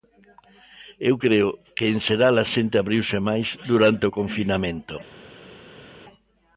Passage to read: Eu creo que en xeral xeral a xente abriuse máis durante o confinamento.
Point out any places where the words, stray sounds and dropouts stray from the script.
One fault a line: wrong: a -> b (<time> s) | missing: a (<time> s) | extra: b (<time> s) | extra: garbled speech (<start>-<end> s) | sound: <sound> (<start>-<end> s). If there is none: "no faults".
missing: xeral (2.3 s)